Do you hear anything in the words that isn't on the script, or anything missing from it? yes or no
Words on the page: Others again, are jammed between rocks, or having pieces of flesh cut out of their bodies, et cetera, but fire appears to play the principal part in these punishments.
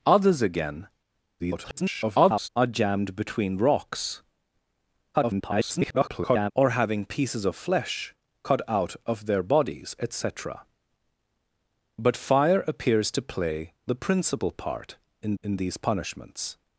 yes